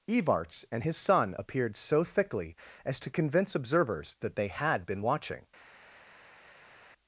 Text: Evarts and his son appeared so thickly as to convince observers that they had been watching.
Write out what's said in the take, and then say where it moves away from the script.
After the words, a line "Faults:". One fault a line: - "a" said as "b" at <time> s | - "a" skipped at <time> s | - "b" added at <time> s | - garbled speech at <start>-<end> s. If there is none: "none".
Evarts and his son appeared so thickly as to convince observers that they had been watching.
Faults:
none